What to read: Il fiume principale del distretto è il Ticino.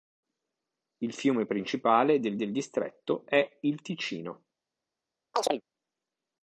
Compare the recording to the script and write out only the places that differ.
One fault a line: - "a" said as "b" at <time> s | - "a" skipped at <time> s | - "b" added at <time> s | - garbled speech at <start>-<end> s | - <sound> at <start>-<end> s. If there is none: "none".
- "del" added at 2.4 s
- chirp at 5.3-5.6 s